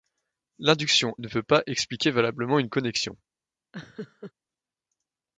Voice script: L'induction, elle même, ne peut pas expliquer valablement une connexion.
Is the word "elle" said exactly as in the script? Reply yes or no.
no